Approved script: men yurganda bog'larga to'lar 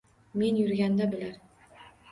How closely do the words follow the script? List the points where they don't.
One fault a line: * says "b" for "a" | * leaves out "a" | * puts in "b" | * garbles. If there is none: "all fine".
* leaves out "bog'larga"